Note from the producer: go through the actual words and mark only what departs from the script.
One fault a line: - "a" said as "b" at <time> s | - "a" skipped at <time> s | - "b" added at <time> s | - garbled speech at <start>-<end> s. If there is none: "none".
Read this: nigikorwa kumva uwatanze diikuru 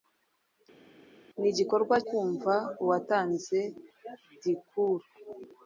none